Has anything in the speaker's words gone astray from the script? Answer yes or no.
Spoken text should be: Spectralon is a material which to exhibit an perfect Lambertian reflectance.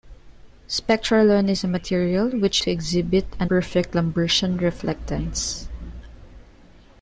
no